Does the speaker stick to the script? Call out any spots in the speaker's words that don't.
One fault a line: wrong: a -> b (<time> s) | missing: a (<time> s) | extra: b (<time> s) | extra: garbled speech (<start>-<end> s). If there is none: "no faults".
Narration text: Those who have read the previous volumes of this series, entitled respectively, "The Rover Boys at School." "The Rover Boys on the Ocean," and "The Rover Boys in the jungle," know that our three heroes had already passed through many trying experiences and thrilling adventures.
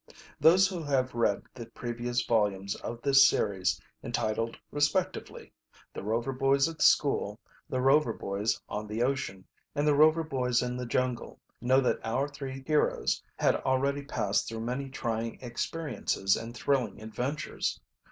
no faults